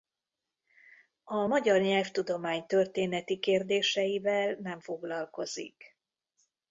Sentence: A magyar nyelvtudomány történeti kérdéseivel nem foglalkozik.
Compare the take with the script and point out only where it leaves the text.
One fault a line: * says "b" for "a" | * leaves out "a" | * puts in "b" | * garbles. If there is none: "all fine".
all fine